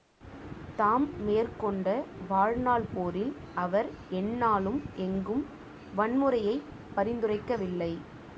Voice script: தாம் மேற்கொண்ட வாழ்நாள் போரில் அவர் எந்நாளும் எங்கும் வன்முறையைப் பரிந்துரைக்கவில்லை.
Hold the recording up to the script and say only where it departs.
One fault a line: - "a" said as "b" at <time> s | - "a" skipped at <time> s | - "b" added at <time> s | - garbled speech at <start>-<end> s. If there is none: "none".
none